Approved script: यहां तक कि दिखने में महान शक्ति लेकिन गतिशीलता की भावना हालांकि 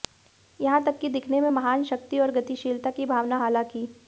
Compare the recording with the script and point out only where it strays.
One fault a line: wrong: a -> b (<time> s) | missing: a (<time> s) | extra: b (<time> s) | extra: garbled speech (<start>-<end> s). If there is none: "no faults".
wrong: लेकिन -> और (2.2 s)